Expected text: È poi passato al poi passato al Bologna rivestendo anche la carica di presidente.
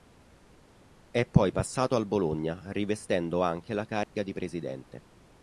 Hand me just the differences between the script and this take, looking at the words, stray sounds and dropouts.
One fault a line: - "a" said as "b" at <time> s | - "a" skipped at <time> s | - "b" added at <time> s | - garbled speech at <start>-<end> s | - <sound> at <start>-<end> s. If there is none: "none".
- "poi passato al" skipped at 2.1 s
- dropout at 4.0-4.1 s